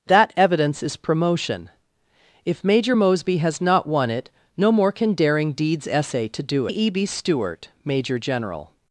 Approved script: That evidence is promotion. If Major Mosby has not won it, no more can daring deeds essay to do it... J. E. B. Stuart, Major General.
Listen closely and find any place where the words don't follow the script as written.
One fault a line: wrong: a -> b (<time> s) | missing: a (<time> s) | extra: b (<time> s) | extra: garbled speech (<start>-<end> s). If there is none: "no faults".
missing: it J (6.7 s)